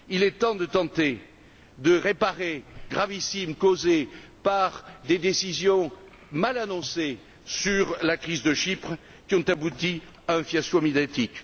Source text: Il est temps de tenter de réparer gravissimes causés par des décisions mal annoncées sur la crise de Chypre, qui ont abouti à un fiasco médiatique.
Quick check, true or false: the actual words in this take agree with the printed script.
true